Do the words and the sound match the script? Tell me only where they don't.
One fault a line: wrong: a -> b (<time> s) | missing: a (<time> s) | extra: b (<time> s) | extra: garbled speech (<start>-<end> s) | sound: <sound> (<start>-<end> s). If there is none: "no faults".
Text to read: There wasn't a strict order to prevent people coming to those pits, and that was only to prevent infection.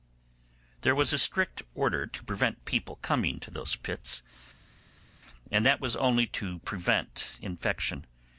wrong: wasn't -> was (0.9 s)